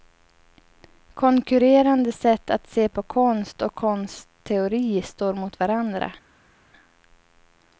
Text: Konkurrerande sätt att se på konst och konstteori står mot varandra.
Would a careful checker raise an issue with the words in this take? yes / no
no